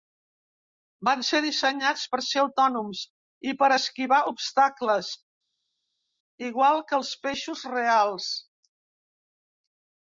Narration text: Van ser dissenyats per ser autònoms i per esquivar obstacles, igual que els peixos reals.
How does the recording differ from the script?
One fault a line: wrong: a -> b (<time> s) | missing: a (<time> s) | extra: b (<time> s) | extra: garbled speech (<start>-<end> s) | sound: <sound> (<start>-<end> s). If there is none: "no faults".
no faults